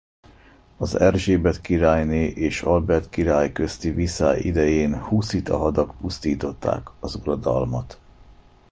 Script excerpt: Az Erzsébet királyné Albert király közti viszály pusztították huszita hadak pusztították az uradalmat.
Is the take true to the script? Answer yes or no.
no